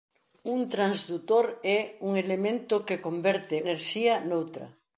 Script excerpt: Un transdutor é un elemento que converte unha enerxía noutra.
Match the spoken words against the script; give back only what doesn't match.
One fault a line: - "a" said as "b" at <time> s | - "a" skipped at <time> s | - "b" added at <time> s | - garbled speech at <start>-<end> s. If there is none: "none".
- "unha" skipped at 3.6 s